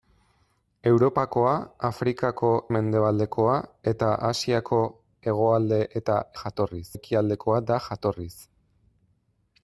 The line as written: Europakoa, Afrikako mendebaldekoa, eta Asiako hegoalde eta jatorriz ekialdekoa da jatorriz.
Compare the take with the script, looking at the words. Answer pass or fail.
pass